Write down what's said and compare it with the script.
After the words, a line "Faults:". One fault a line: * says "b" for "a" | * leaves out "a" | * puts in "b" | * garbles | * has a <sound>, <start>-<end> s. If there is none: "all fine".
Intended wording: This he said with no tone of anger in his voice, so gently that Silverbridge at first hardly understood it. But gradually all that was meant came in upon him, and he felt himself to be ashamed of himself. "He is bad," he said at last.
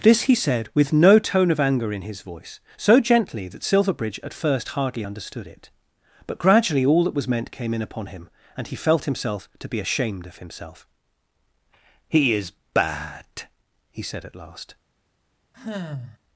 This he said with no tone of anger in his voice, so gently that Silverbridge at first hardly understood it. But gradually all that was meant came in upon him, and he felt himself to be ashamed of himself. "He is bad," he said at last.
Faults:
* has a sigh, 15.5-16.2 s